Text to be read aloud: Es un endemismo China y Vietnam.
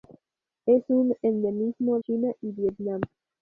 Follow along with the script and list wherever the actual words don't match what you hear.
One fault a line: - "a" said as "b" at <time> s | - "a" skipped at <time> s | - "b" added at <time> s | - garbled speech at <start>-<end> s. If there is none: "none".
none